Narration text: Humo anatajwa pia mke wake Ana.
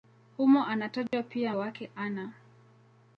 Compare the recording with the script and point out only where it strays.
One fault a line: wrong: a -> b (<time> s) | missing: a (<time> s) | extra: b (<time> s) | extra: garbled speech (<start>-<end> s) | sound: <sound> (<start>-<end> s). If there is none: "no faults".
sound: dropout (1.1-1.1 s)
missing: mke (1.6 s)